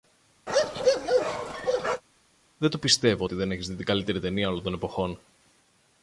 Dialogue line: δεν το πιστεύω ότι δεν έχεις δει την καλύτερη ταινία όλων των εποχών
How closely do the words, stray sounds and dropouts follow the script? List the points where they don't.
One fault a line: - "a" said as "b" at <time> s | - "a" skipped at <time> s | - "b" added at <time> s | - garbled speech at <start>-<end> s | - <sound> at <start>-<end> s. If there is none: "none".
- bark at 0.5-2.0 s